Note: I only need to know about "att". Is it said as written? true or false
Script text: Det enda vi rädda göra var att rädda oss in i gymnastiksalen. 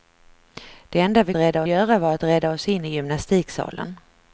true